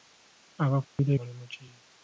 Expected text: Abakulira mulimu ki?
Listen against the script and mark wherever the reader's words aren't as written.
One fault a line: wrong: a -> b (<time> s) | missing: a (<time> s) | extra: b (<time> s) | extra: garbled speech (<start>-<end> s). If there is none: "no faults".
no faults